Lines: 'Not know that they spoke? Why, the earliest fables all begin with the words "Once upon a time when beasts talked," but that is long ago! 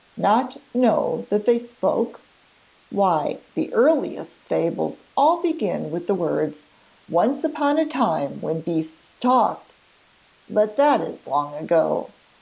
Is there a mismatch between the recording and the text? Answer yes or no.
no